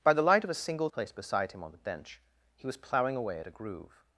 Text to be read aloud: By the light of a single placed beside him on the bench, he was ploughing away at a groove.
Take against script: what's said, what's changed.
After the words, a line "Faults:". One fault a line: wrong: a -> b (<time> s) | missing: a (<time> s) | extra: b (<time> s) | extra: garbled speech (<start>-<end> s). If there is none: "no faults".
By the light of a single placed beside him on the bench, he was ploughing away at a groove.
Faults:
no faults